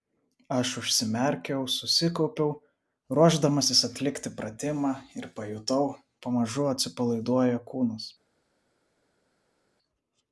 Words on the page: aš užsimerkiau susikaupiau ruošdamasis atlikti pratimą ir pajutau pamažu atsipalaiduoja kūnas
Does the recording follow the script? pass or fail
pass